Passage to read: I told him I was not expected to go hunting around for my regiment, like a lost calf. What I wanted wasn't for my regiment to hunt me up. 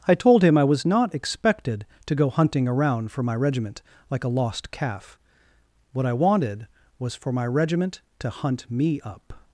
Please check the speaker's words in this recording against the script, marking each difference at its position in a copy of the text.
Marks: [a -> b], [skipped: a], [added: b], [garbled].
I told him I was not expected to go hunting around for my regiment, like a lost calf. What I wanted [wasn't -> was] for my regiment to hunt me up.